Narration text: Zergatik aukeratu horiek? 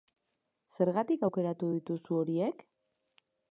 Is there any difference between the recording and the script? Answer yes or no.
yes